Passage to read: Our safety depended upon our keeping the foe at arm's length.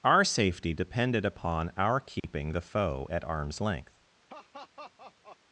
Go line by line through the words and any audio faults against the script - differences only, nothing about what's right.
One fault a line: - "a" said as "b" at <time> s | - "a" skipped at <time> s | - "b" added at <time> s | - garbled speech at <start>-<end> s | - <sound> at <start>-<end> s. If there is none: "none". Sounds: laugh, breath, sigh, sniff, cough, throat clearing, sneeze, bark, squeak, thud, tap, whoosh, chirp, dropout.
- dropout at 2.2-2.2 s
- laugh at 4.3-5.4 s